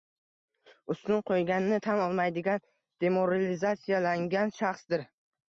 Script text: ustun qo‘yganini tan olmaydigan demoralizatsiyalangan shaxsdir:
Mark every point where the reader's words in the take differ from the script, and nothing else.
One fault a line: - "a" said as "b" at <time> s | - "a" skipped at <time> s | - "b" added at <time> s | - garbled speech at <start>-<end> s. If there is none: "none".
none